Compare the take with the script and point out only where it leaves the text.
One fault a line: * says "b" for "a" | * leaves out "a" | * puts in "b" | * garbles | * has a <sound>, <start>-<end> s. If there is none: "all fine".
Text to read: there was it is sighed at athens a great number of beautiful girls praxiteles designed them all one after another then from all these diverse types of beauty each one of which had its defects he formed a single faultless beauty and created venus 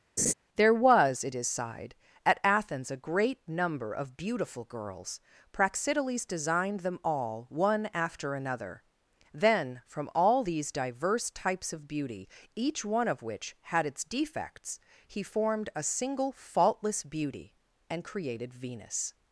* has a laugh, 0.2-0.3 s